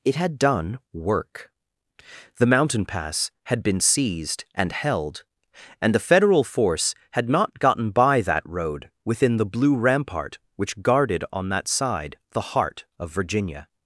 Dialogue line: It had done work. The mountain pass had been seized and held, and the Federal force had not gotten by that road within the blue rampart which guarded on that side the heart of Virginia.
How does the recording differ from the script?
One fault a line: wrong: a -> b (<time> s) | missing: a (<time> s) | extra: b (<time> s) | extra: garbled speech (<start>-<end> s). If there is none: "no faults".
no faults